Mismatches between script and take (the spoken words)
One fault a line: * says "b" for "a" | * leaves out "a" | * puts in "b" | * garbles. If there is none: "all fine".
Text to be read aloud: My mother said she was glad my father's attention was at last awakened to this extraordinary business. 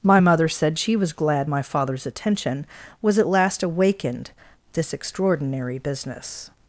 * leaves out "to"